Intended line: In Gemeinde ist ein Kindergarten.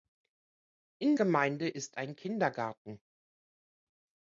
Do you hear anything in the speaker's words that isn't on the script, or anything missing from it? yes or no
no